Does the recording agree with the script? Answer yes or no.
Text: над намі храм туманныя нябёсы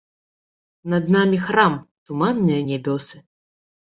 yes